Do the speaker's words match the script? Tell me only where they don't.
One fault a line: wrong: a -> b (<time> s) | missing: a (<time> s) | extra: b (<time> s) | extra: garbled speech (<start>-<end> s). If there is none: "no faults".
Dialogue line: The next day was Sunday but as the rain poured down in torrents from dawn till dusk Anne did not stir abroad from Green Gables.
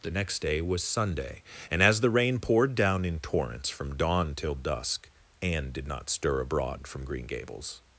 wrong: but -> and (1.7 s)